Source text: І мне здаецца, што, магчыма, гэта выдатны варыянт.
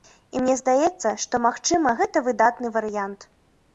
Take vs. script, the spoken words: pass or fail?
pass